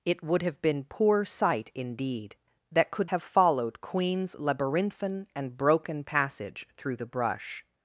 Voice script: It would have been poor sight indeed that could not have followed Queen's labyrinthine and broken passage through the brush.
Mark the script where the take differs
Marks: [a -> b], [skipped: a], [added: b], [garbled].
It would have been poor sight indeed that could [skipped: not] have followed Queen's labyrinthine and broken passage through the brush.